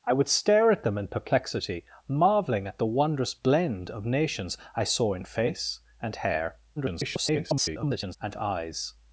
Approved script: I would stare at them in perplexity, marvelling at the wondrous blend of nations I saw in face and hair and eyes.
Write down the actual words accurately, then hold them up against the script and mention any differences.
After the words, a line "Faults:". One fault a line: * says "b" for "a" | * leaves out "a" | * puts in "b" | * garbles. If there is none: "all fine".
I would stare at them in perplexity, marvelling at the wondrous blend of nations I saw in face and hair [garbled] and eyes.
Faults:
* garbles